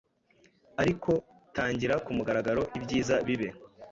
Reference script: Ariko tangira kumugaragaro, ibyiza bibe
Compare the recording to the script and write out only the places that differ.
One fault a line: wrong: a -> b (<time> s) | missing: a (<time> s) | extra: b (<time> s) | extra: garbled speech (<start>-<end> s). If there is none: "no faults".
no faults